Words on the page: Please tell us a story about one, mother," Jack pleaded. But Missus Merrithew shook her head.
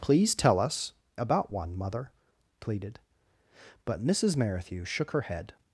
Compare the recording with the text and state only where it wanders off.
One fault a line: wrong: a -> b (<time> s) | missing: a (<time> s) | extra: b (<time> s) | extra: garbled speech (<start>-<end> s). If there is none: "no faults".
missing: a story (0.9 s)
missing: Jack (2.1 s)